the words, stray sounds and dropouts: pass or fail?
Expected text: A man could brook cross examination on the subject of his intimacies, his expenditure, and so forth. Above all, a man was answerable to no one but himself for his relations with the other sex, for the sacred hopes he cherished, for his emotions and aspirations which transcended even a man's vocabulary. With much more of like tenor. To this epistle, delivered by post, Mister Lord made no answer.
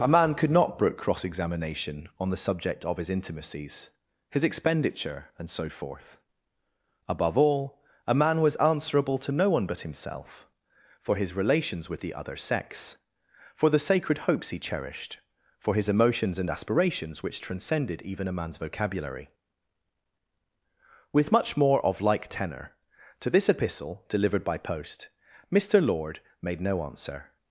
fail